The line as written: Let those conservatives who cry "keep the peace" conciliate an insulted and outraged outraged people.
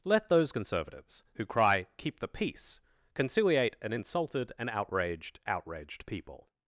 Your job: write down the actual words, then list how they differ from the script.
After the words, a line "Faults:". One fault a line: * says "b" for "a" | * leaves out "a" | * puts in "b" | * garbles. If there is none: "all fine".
Let those conservatives who cry "keep the peace" conciliate an insulted and outraged outraged people.
Faults:
all fine